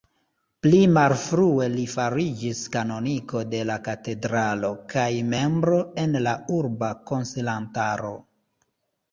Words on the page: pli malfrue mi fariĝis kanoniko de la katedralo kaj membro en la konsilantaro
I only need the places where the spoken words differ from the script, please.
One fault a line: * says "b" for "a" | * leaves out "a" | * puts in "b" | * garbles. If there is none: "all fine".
* says "li" for "mi"
* puts in "urba"